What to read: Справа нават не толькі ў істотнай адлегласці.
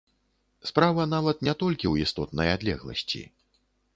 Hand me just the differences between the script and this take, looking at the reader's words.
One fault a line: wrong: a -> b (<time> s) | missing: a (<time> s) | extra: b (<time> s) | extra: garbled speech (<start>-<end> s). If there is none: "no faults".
no faults